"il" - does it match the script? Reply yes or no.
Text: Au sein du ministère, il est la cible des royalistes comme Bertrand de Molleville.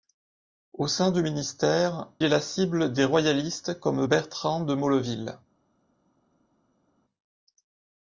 no